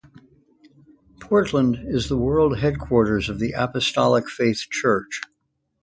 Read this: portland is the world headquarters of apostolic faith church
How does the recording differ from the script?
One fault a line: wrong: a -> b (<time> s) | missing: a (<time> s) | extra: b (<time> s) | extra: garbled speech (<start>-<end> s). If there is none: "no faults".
extra: the (3.4 s)